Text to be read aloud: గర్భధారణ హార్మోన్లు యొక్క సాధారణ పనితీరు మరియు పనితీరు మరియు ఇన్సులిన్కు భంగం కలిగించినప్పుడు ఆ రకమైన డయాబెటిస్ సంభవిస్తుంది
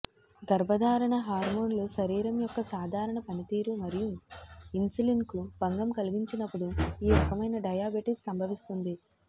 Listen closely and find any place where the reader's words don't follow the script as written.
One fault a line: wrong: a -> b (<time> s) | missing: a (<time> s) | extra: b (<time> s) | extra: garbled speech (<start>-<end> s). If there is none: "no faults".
extra: శరీరం (1.9 s)
missing: పనితీరు మరియు (4.1 s)
wrong: ఆ -> ఈ (7.0 s)